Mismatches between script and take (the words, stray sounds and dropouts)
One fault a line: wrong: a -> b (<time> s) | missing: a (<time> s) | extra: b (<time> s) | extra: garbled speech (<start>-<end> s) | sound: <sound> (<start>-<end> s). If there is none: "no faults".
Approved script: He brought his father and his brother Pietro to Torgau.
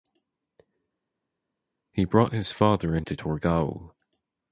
missing: his brother Pietro (3.1 s)